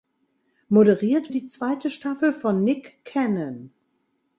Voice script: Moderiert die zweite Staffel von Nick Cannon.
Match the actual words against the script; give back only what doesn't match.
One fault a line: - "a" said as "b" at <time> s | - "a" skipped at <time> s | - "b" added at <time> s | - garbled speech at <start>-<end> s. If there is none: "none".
none